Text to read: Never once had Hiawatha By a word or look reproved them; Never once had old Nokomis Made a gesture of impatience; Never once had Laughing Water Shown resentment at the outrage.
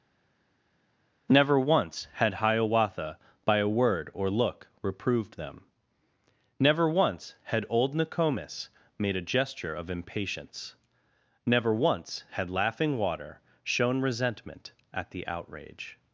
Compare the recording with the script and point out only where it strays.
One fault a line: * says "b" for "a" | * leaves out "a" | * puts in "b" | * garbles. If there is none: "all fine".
all fine